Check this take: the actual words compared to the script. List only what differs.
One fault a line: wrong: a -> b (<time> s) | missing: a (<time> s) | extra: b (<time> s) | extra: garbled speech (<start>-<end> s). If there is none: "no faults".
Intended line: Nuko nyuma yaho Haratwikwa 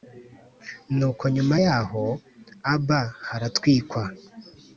extra: Aba (2.7 s)